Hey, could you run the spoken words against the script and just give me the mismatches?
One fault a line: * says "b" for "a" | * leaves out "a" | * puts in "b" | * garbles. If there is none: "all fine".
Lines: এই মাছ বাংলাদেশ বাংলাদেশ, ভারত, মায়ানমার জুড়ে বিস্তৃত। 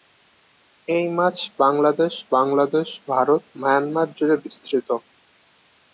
all fine